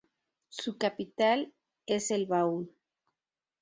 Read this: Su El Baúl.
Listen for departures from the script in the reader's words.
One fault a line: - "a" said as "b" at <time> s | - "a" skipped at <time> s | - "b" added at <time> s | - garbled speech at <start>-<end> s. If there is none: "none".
- "capital es" added at 0.8 s